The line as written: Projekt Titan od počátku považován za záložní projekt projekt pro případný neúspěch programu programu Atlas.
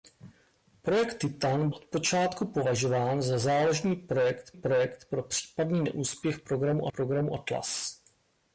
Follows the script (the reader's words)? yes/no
yes